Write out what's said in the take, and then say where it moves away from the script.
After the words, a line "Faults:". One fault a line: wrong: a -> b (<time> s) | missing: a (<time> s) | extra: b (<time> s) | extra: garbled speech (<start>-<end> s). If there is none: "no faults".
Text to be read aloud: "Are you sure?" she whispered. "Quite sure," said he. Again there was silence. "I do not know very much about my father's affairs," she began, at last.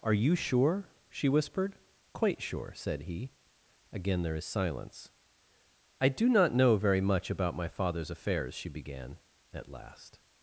"Are you sure?" she whispered. "Quite sure," said he. Again there is silence. "I do not know very much about my father's affairs," she began, at last.
Faults:
wrong: was -> is (4.3 s)